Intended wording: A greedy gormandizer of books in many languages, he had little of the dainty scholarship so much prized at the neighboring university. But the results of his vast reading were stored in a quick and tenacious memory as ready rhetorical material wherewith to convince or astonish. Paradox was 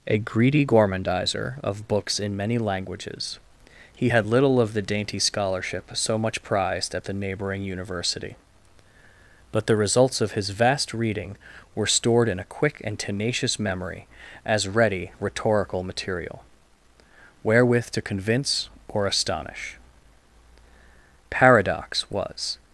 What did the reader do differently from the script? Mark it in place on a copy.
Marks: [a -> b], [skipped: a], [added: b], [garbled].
A greedy gormandizer of books in many languages, he had little of the dainty scholarship so much prized at the neighboring university. But the results of his vast reading were stored in a quick and tenacious memory as ready rhetorical material wherewith to convince or astonish. Paradox was